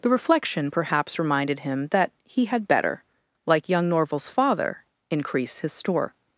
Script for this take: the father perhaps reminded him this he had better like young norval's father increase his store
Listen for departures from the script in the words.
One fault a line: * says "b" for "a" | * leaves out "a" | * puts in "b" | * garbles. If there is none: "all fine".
* says "reflection" for "father"
* says "that" for "this"